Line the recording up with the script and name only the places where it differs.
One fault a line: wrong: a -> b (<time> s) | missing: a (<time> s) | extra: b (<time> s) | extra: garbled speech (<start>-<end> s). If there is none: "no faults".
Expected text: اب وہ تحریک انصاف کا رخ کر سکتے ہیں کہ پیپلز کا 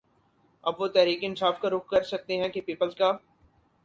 no faults